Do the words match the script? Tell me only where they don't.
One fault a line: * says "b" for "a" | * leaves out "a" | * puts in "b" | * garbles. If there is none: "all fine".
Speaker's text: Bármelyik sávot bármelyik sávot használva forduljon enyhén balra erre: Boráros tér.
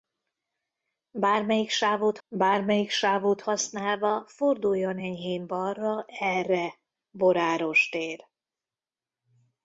all fine